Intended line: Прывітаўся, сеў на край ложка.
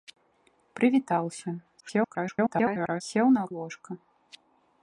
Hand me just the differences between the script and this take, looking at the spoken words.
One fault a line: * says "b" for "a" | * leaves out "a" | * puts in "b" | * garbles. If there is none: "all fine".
* garbles
* leaves out "край"